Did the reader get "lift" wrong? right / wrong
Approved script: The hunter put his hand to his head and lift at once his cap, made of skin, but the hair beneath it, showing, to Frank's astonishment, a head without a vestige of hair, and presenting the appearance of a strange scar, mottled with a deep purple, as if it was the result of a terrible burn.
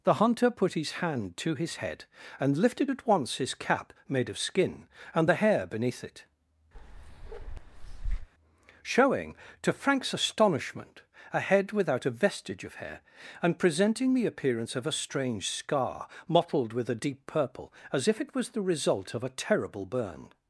wrong